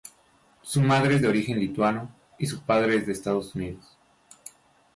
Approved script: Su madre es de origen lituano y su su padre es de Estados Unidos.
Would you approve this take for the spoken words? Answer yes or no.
no